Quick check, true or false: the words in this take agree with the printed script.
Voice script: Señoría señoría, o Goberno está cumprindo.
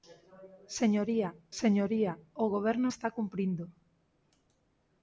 true